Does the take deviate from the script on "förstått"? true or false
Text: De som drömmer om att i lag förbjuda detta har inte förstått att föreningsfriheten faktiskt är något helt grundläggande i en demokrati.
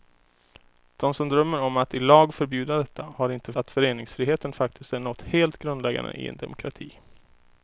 true